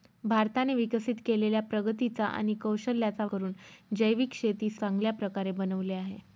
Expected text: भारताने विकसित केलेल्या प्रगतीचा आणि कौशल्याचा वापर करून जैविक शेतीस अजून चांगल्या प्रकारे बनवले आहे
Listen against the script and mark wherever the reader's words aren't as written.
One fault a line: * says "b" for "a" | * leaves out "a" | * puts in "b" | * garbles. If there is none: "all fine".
* leaves out "वापर"
* leaves out "अजून"